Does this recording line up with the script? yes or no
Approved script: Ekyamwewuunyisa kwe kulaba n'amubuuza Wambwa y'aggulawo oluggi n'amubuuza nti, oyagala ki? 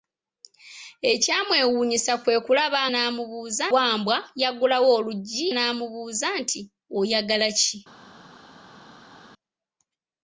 yes